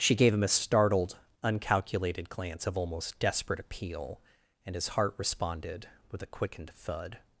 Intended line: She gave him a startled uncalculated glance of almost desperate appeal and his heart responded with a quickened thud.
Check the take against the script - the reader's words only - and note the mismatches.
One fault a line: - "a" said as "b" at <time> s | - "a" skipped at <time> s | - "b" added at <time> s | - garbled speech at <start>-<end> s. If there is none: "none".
none